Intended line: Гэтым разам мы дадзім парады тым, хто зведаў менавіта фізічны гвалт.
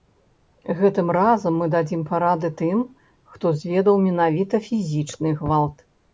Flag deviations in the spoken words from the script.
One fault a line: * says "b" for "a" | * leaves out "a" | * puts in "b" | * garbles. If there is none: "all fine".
all fine